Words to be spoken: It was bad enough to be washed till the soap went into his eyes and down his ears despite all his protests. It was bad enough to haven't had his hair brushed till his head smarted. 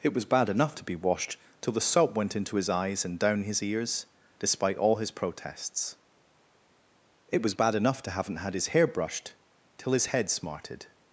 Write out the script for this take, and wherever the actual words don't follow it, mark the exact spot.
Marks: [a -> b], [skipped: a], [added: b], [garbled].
It was bad enough to be washed till the soap went into his eyes and down his ears despite all his protests. It was bad enough to haven't had his hair brushed till his head smarted.